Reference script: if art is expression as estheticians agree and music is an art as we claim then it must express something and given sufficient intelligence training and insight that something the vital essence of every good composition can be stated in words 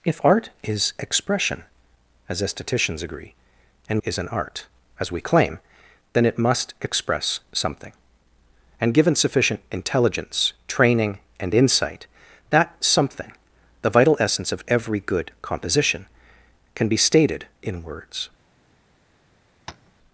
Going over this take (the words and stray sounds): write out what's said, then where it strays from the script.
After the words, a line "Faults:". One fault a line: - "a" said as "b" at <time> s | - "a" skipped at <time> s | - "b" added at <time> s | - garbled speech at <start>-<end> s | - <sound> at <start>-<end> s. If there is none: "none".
if art is expression as estheticians agree and is an art as we claim then it must express something and given sufficient intelligence training and insight that something the vital essence of every good composition can be stated in words
Faults:
- "music" skipped at 4.0 s
- tap at 19.7-19.9 s